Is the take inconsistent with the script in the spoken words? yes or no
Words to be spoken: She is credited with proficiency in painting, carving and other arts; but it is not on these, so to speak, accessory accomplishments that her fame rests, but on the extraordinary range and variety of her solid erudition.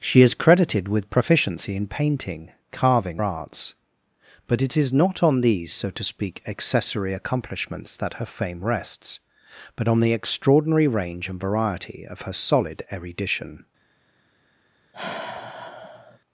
yes